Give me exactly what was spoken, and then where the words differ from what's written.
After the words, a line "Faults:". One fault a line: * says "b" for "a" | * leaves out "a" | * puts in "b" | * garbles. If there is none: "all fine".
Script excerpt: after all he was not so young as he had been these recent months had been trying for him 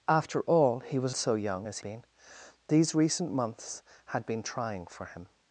after all he was so young as been these recent months had been trying for him
Faults:
* leaves out "not"
* leaves out "he had"